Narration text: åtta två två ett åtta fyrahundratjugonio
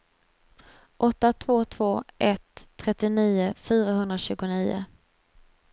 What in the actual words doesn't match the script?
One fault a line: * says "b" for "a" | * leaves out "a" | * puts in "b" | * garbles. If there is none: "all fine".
* says "trettionio" for "åtta"